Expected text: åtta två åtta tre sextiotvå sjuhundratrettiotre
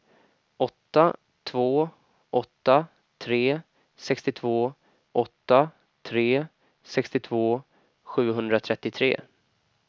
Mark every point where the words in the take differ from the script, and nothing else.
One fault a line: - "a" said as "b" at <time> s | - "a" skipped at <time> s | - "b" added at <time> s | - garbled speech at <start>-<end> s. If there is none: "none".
- "åtta tre sextiotvå" added at 5.1 s